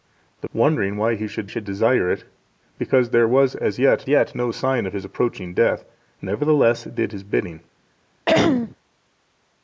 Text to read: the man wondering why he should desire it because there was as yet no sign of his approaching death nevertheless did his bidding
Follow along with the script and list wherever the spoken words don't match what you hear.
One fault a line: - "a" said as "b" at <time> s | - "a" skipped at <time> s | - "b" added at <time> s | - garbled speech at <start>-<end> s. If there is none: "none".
- "man" skipped at 0.5 s
- "should" added at 1.5 s
- "yet" added at 4.1 s